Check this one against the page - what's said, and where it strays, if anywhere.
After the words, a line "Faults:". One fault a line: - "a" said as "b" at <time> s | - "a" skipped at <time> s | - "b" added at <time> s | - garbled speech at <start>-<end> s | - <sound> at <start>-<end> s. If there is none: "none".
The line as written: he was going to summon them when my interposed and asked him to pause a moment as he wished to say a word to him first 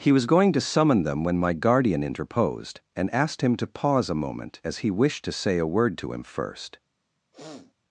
he was going to summon them when my guardian interposed and asked him to pause a moment as he wished to say a word to him first
Faults:
- "guardian" added at 1.5 s
- sniff at 7.3-7.7 s